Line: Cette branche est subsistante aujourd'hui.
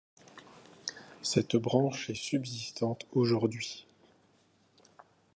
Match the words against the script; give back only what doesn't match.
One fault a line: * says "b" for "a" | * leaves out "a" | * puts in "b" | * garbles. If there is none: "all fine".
all fine